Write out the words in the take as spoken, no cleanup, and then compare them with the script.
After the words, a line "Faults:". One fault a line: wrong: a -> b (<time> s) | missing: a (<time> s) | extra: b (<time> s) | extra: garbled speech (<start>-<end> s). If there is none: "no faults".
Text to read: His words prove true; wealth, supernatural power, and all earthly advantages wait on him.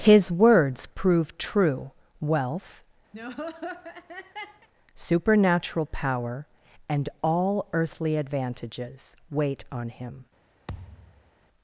His words prove true; wealth, supernatural power, and all earthly advantages wait on him.
Faults:
no faults